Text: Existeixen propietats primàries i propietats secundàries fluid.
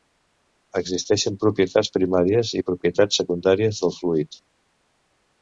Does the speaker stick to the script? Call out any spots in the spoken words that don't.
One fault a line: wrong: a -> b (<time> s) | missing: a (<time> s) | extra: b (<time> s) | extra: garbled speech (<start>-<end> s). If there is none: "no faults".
extra: del (3.8 s)